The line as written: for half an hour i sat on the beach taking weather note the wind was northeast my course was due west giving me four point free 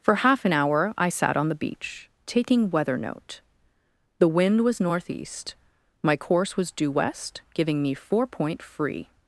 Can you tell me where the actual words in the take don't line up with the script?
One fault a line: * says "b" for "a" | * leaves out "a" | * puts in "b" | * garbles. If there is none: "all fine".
all fine